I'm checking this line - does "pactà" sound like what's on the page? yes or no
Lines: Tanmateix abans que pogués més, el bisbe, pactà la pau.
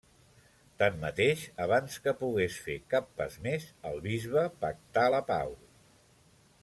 yes